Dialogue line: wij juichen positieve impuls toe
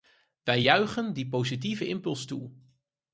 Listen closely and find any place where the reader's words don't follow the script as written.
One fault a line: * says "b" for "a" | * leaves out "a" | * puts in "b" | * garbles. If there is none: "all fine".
* puts in "die"